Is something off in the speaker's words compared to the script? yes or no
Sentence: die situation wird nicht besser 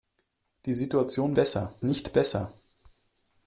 yes